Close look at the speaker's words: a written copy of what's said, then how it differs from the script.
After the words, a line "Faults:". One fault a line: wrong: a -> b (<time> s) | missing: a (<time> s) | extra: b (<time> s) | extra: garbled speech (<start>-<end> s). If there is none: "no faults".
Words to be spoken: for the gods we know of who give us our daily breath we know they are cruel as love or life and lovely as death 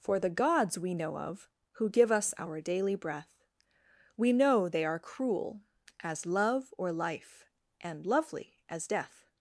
for the gods we know of who give us our daily breath we know they are cruel as love or life and lovely as death
Faults:
no faults